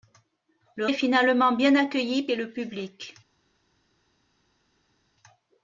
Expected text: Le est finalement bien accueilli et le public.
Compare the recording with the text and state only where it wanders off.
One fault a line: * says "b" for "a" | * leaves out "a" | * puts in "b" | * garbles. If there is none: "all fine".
all fine